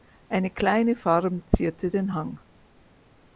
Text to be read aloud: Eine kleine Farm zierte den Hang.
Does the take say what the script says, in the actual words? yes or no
yes